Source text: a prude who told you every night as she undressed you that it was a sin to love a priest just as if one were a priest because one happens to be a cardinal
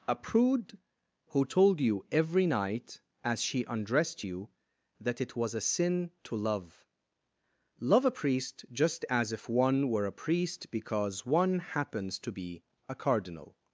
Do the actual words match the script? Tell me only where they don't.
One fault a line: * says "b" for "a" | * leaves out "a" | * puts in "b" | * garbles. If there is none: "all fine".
* puts in "love"